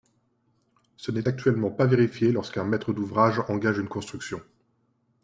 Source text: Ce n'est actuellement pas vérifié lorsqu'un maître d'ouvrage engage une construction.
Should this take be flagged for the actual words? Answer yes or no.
no